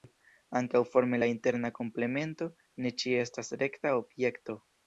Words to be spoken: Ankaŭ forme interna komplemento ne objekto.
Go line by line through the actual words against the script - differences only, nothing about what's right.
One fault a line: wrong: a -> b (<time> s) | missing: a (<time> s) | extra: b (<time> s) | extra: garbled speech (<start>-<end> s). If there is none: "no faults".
extra: la (1.2 s)
extra: ĉie estas rekta (3.0 s)